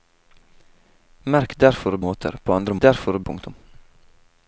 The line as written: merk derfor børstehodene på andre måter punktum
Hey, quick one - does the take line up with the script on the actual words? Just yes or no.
no